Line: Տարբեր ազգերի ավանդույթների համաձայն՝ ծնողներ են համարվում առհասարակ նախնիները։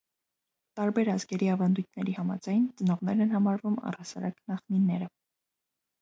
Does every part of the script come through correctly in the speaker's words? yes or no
yes